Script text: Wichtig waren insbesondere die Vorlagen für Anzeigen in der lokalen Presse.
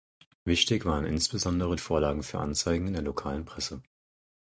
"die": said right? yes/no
no